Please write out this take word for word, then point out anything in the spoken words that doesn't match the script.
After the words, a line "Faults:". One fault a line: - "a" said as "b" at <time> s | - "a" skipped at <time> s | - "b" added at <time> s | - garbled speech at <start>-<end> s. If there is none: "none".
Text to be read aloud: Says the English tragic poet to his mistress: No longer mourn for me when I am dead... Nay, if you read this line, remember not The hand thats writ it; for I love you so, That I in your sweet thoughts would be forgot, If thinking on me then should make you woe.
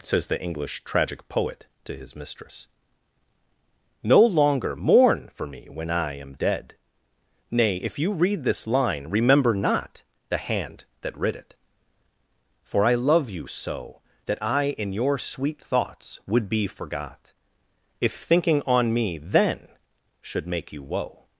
Says the English tragic poet to his mistress: No longer mourn for me when I am dead... Nay, if you read this line, remember not The hand that writ it; for I love you so, That I in your sweet thoughts would be forgot, If thinking on me then should make you woe.
Faults:
- "thats" said as "that" at 11.0 s